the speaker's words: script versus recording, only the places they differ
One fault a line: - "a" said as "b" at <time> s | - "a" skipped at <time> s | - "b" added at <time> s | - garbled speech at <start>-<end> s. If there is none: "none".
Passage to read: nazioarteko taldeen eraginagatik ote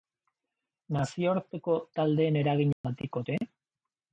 none